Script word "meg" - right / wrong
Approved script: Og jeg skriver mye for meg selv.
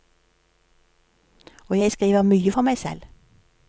right